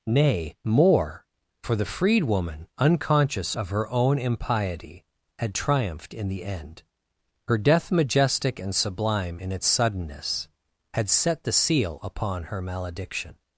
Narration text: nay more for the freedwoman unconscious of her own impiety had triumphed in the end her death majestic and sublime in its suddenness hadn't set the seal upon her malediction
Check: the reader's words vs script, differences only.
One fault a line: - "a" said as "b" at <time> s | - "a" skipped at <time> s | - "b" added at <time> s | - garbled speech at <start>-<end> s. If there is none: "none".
- "hadn't" said as "had" at 10.9 s